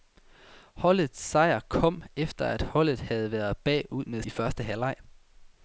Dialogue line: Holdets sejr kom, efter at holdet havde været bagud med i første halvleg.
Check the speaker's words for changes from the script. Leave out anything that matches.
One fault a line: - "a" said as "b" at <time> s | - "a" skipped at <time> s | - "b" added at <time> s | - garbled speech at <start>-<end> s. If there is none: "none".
none